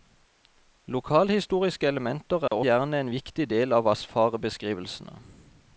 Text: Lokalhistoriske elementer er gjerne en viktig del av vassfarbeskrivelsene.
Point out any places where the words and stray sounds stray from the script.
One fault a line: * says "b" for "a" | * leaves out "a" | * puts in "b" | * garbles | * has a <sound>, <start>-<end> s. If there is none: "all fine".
* has a dropout, 2.5-2.5 s